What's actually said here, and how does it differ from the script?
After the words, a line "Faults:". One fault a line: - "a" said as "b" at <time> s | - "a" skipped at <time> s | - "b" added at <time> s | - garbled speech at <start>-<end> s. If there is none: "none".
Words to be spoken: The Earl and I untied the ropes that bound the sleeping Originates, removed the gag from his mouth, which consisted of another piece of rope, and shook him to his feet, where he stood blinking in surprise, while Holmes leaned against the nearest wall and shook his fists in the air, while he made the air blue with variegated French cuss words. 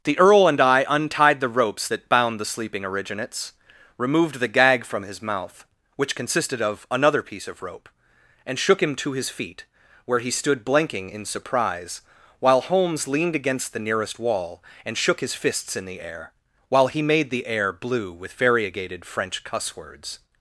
The Earl and I untied the ropes that bound the sleeping Originates, removed the gag from his mouth, which consisted of another piece of rope, and shook him to his feet, where he stood blinking in surprise, while Holmes leaned against the nearest wall and shook his fists in the air, while he made the air blue with variegated French cuss words.
Faults:
none